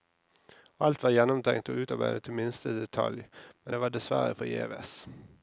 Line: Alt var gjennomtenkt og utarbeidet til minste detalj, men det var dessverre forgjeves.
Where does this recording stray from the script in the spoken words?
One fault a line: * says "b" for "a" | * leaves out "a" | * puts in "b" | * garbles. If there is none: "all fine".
all fine